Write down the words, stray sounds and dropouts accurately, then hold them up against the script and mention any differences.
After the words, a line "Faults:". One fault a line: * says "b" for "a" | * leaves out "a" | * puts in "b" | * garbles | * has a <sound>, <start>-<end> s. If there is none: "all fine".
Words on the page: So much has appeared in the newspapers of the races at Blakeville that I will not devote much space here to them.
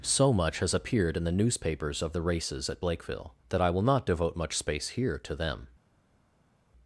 So much has appeared in the newspapers of the races at Blakeville that I will not devote much space here to them.
Faults:
all fine